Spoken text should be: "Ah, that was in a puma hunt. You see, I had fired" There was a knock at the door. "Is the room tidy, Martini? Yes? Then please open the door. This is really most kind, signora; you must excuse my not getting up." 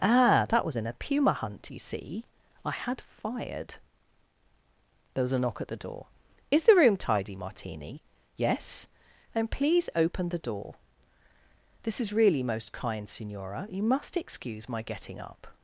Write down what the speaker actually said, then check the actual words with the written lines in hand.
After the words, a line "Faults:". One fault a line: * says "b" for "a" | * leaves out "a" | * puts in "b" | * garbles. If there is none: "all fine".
"Ah, that was in a puma hunt. You see, I had fired" There was a knock at the door. "Is the room tidy, Martini? Yes? Then please open the door. This is really most kind, signora; you must excuse my getting up."
Faults:
* leaves out "not"